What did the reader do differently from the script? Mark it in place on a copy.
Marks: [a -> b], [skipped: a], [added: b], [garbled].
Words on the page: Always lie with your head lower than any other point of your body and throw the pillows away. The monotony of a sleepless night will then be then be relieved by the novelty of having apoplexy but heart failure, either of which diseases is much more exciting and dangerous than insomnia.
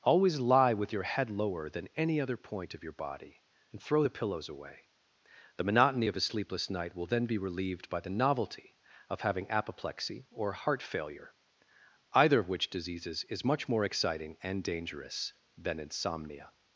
Always lie with your head lower than any other point of your body and throw the pillows away. The monotony of a sleepless night will then be [skipped: then be] relieved by the novelty of having apoplexy [but -> or] heart failure, either of which diseases is much more exciting and dangerous than insomnia.